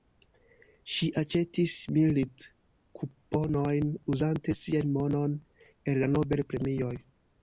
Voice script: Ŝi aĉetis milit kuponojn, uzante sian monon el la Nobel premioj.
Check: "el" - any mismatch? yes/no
no